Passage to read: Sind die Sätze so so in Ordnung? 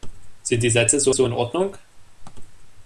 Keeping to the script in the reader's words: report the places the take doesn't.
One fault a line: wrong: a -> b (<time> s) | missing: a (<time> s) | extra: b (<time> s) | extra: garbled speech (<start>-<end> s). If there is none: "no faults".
no faults